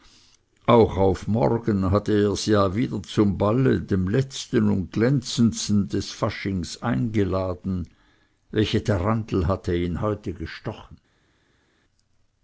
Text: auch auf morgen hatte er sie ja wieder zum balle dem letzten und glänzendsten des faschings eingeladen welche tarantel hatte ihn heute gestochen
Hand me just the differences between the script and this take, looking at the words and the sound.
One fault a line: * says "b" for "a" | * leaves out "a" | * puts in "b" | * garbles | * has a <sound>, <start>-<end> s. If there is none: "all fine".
all fine